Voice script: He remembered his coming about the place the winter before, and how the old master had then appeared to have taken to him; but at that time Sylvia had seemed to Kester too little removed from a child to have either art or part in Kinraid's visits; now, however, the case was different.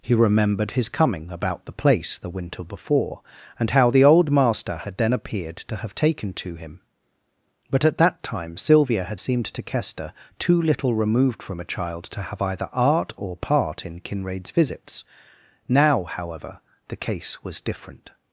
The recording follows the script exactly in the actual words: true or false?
true